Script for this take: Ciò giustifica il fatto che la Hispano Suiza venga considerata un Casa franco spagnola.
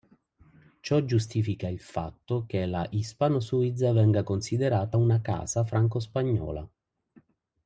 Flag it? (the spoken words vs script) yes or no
yes